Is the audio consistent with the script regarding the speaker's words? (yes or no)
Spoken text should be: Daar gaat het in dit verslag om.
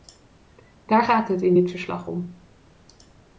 yes